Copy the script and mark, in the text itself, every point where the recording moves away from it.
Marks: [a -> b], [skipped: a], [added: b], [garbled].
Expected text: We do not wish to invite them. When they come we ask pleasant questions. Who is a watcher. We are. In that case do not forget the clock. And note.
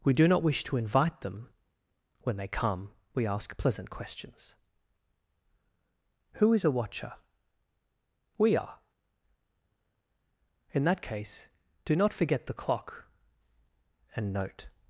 We do not wish to invite them. When they come we ask pleasant questions. Who is a watcher. We are. In that case do not forget the clock. And note.